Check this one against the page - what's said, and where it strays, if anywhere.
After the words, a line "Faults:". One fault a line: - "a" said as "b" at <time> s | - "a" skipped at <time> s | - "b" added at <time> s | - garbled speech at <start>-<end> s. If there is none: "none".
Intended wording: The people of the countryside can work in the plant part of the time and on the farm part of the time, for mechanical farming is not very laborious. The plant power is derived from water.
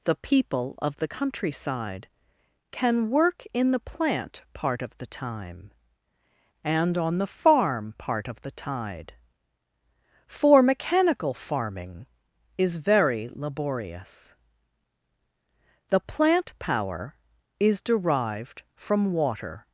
The people of the countryside can work in the plant part of the time and on the farm part of the tide, for mechanical farming is very laborious. The plant power is derived from water.
Faults:
- "time" said as "tide" at 8.5 s
- "not" skipped at 12.8 s